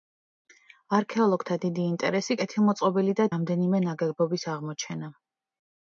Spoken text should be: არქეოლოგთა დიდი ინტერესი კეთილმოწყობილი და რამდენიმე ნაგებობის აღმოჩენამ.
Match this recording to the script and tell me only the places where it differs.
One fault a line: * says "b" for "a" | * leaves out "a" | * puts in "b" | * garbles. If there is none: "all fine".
all fine